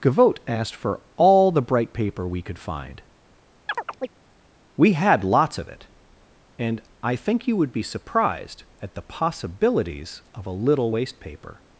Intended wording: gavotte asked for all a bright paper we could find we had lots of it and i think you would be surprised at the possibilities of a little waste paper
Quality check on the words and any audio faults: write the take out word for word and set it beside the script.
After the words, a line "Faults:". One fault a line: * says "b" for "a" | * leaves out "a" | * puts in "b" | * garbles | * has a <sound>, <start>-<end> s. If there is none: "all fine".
gavotte asked for all the bright paper we could find we had lots of it and i think you would be surprised at the possibilities of a little waste paper
Faults:
* says "the" for "a"
* has a chirp, 3.7-4.1 s